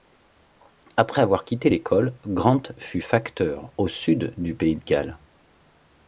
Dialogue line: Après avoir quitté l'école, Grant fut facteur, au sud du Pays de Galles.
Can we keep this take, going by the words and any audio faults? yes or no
yes